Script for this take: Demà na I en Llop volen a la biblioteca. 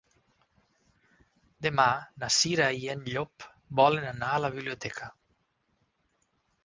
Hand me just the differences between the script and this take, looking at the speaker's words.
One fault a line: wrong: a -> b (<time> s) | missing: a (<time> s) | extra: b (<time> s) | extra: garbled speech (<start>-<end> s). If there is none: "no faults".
extra: Cira (2.4 s)
extra: anar (4.1 s)